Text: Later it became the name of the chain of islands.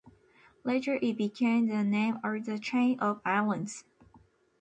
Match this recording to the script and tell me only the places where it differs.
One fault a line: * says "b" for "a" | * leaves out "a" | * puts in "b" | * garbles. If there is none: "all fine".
all fine